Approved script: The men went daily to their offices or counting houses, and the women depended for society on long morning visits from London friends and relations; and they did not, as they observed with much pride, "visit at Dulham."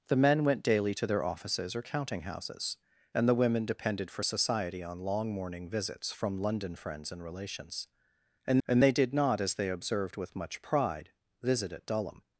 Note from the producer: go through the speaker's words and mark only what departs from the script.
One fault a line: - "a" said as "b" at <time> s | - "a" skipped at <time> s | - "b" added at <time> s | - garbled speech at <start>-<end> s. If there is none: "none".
- "and" added at 8.7 s